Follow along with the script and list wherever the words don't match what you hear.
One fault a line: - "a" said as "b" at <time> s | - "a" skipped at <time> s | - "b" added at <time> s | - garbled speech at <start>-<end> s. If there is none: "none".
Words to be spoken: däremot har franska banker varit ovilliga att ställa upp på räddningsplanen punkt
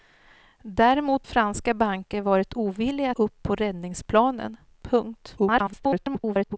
- "har" skipped at 1.3 s
- "att ställa" skipped at 3.1 s
- garbled speech at 5.4-6.6 s